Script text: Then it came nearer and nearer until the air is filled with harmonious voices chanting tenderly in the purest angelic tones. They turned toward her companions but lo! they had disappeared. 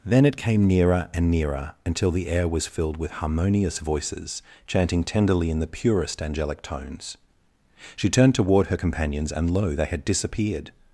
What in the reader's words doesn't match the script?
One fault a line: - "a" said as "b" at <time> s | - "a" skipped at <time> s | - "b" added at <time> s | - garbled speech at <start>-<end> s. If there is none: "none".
- "is" said as "was" at 2.5 s
- "They" said as "She" at 8.0 s
- "but" said as "and" at 9.3 s